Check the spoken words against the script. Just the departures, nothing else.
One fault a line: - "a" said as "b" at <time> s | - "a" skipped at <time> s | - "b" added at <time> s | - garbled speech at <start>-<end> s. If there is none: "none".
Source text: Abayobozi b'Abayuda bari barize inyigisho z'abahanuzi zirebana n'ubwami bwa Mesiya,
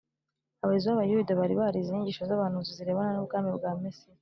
none